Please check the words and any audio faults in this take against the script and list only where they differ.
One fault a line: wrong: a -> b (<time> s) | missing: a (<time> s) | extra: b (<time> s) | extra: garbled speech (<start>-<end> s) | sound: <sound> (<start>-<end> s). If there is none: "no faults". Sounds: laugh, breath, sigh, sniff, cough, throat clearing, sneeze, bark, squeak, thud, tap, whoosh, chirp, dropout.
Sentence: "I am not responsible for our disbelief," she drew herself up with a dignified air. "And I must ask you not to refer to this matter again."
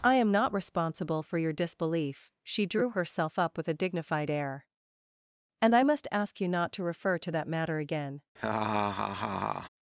wrong: our -> your (1.4 s)
wrong: this -> that (7.3 s)
sound: laugh (8.4-9.7 s)